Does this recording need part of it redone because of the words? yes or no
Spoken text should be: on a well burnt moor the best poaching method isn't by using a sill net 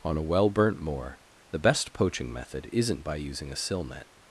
no